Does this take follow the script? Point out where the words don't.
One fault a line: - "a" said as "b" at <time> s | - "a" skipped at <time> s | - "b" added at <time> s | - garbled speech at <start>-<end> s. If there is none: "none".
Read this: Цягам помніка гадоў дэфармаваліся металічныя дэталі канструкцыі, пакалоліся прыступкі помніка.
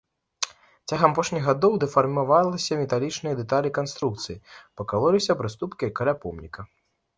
- "помніка" said as "апошніх" at 1.1 s
- "каля" added at 6.0 s